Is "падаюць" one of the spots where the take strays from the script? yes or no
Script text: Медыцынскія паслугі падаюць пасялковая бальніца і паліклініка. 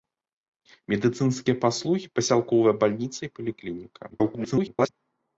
yes